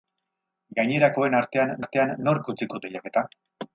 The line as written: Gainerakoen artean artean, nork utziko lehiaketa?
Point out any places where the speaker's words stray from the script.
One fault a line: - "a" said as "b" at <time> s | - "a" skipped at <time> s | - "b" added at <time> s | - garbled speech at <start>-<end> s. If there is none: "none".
none